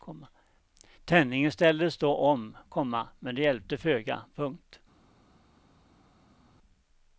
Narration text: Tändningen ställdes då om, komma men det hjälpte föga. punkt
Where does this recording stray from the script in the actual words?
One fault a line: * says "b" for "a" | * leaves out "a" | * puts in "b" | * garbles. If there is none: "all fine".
all fine